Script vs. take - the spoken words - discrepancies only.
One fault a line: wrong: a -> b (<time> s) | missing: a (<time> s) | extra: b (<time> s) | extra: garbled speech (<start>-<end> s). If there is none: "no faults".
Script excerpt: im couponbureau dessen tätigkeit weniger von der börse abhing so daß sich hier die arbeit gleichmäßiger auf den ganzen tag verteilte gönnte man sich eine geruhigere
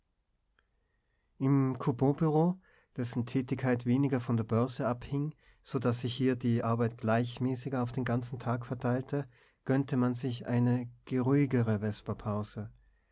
no faults